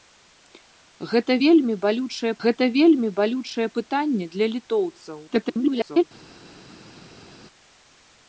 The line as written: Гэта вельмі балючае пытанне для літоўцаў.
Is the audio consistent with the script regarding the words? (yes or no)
no